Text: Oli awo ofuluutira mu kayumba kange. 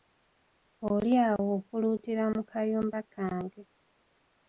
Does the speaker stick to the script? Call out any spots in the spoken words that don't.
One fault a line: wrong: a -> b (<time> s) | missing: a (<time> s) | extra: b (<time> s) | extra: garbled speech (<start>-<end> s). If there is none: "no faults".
no faults